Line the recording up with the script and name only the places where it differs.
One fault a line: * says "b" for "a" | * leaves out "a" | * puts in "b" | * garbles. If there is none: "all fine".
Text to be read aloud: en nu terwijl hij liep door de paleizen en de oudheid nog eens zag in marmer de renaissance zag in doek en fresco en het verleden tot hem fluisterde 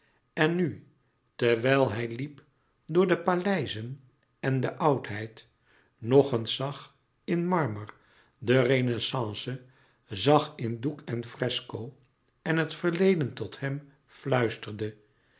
all fine